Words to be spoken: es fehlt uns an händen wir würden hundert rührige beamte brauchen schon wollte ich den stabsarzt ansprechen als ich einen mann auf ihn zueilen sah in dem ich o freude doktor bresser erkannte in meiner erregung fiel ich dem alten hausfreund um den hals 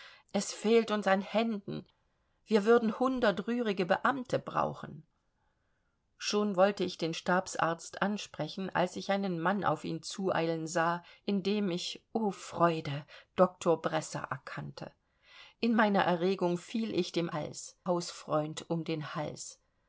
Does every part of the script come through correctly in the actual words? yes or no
no